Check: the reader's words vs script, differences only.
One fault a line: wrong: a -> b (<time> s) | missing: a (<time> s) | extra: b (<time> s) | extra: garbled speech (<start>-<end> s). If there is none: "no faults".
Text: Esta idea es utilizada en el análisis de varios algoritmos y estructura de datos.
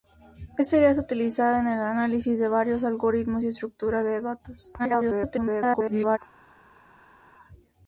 extra: garbled speech (4.8-6.2 s)